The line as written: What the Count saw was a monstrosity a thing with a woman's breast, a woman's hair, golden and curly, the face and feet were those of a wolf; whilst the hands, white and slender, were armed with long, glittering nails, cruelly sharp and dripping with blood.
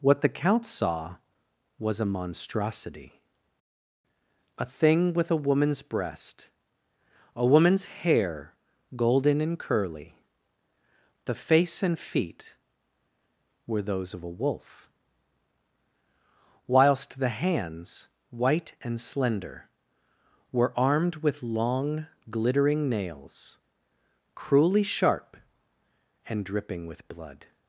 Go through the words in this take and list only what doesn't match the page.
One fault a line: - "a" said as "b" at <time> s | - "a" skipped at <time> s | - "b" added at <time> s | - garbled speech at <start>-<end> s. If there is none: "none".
none